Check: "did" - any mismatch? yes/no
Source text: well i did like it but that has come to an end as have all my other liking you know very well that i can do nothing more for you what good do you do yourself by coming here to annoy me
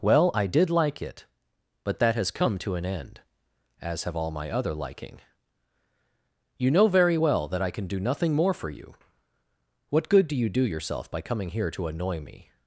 no